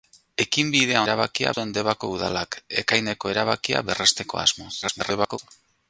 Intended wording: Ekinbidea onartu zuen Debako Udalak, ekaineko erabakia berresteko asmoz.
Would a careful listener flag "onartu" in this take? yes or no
yes